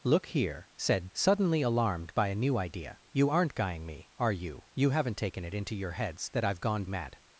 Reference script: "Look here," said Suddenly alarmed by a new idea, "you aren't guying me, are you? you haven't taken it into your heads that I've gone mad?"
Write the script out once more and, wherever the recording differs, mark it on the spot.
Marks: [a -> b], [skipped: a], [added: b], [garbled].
"Look here," said Suddenly alarmed by a new idea, "you aren't guying me, are you? you haven't taken it into your heads that I've gone mad?"